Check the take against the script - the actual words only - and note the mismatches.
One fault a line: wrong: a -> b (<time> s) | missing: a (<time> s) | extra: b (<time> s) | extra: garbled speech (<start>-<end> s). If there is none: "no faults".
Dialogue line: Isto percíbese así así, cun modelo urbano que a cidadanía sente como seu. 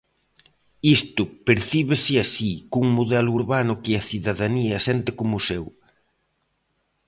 missing: así (2.5 s)